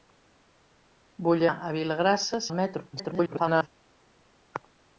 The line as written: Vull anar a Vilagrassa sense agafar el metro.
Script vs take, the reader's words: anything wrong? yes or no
yes